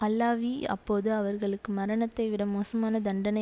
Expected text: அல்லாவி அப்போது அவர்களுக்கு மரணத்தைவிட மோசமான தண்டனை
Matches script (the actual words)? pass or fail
pass